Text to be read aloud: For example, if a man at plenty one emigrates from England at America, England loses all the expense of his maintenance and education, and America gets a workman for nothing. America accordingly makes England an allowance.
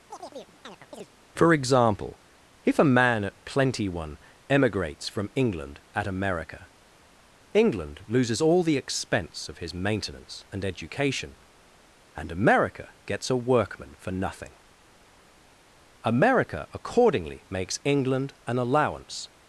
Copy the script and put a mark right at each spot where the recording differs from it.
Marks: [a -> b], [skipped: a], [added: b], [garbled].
For example, if a man at plenty one emigrates from England at America, England loses all the expense of his maintenance and education, and America gets a workman for nothing. America accordingly makes England an allowance.